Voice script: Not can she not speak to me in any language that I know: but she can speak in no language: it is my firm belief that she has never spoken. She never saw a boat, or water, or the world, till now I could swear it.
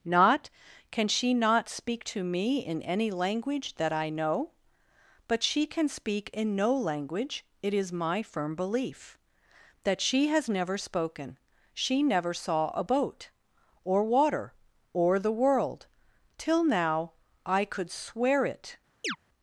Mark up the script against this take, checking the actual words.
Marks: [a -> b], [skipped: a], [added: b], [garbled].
Not can she not speak to me in any language that I know: but she can speak in no language: it is my firm belief that she has never spoken. She never saw a boat, or water, or the world, till now I could swear it.